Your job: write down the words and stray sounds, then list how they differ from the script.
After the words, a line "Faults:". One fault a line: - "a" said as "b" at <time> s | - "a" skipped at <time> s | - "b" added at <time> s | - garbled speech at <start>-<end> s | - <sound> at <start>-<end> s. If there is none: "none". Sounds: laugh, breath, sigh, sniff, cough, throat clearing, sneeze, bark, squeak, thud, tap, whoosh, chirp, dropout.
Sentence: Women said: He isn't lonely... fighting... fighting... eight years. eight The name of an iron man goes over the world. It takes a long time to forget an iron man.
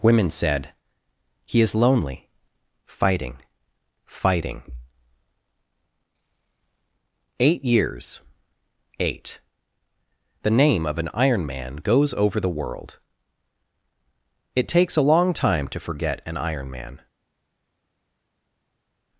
Women said: He is lonely... fighting... fighting... eight years. eight The name of an iron man goes over the world. It takes a long time to forget an iron man.
Faults:
- "isn't" said as "is" at 1.6 s